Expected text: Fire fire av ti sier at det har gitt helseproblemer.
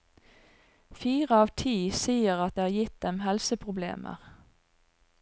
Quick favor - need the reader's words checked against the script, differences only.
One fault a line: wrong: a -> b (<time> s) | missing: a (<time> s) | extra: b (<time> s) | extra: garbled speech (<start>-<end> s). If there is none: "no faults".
missing: fire (1.4 s)
extra: dem (3.1 s)